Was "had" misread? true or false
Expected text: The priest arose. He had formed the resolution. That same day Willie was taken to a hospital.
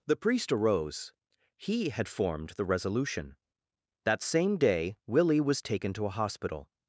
false